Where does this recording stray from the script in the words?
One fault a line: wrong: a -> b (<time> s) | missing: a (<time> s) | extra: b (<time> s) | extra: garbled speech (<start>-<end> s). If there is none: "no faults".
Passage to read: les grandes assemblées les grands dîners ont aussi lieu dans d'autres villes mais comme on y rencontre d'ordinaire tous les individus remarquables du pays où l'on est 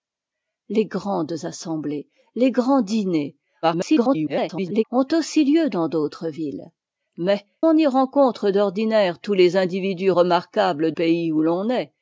extra: garbled speech (3.6-4.8 s)
missing: comme (7.5 s)
missing: du (10.9 s)